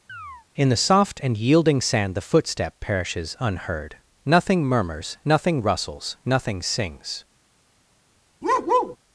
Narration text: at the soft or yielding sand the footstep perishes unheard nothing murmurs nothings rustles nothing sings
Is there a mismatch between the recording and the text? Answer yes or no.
yes